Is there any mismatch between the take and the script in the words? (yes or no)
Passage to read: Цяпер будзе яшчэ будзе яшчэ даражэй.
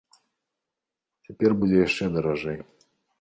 yes